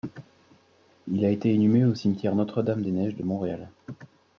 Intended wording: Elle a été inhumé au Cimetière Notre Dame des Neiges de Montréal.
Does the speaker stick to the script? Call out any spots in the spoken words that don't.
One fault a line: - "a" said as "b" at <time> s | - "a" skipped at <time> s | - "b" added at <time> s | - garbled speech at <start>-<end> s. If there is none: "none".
- "Elle" said as "Il" at 1.1 s